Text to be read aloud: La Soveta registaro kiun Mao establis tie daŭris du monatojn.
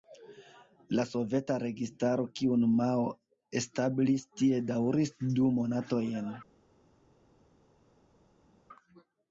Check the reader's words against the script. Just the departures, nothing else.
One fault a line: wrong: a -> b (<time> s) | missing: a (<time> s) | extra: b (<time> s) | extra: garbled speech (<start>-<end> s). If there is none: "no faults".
no faults